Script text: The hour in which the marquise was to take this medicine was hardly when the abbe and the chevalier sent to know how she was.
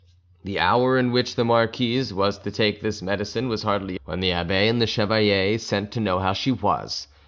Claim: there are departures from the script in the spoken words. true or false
false